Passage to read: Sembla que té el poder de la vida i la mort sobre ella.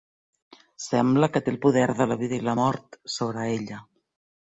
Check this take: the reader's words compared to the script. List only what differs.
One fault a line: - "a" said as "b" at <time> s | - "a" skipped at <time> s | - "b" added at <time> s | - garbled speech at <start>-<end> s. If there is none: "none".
none